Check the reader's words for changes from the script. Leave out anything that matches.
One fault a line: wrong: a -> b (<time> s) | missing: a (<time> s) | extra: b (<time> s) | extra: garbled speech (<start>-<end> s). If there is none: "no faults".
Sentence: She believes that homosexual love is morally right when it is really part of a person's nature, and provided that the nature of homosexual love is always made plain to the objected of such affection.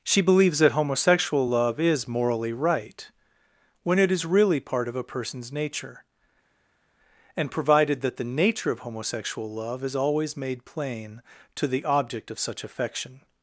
wrong: objected -> object (11.8 s)